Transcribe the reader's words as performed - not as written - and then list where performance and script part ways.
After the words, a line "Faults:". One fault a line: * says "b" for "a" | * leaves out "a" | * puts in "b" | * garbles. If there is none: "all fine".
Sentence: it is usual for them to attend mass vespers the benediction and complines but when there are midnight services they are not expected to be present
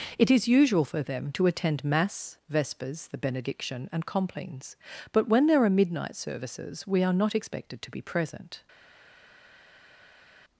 it is usual for them to attend mass vespers the benediction and complines but when there are midnight services we are not expected to be present
Faults:
* says "we" for "they"